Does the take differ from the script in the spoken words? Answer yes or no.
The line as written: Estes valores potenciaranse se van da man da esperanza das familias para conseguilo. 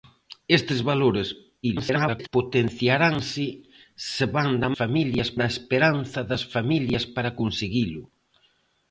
yes